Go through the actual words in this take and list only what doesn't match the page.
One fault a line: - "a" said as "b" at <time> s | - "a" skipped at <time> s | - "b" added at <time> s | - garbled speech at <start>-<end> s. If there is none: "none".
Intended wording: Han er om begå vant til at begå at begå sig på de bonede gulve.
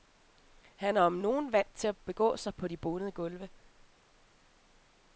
- "begå" said as "nogen" at 1.1 s
- "at begå" skipped at 2.4 s